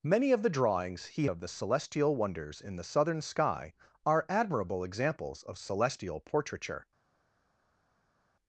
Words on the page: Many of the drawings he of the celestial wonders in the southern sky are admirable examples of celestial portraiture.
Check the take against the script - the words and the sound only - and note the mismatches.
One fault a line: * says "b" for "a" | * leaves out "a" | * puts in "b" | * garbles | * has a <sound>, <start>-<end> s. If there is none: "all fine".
all fine